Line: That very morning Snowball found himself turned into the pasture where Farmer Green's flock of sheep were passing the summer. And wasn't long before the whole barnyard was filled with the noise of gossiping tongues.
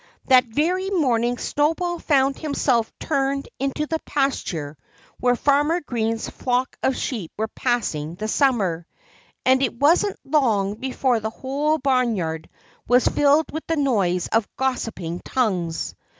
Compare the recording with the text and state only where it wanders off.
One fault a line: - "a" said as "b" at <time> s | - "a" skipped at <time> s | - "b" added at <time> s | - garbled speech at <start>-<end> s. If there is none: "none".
- "it" added at 9.6 s